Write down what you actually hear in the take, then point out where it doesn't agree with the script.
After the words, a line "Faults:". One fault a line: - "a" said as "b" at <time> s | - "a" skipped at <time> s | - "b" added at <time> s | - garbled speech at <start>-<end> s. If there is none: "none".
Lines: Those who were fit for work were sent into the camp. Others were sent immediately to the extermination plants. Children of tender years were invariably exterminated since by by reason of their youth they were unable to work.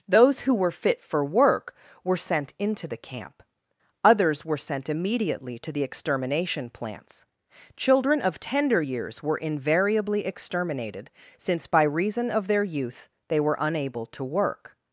Those who were fit for work were sent into the camp. Others were sent immediately to the extermination plants. Children of tender years were invariably exterminated since by reason of their youth they were unable to work.
Faults:
- "by" skipped at 11.8 s